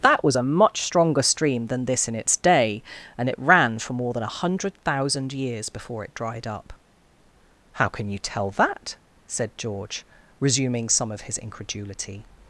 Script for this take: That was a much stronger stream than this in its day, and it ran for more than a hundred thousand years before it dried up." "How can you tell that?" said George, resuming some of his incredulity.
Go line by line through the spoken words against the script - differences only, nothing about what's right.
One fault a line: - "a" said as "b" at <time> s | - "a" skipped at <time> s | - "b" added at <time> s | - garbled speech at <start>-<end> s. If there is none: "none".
none